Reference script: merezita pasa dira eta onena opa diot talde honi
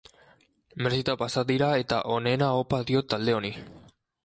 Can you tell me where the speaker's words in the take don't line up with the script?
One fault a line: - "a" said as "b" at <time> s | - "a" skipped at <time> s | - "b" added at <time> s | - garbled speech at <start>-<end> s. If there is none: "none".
none